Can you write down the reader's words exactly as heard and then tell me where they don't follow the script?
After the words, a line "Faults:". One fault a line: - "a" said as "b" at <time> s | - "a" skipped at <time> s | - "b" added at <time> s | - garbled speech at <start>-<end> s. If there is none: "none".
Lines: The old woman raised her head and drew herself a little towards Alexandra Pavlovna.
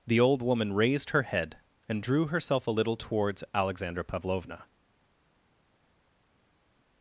The old woman raised her head and drew herself a little towards Alexandra Pavlovna.
Faults:
none